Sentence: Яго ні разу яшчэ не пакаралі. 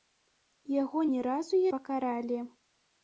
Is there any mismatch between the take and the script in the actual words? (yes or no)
yes